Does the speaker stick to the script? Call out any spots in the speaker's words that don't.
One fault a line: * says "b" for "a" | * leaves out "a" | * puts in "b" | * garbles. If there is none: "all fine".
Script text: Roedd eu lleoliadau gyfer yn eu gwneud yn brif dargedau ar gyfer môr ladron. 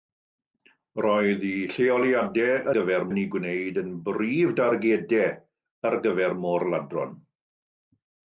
all fine